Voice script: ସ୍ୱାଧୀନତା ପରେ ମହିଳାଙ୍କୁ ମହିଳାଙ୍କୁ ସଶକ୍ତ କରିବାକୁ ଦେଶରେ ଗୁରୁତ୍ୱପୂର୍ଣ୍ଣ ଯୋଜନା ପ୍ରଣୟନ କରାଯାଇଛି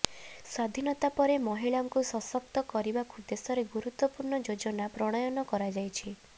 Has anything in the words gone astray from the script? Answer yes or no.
yes